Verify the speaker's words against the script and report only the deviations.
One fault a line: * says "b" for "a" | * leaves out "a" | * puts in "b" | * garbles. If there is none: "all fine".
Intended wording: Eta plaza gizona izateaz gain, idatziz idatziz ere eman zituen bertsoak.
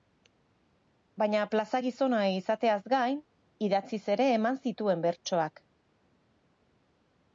* says "Baina" for "Eta"
* leaves out "idatziz"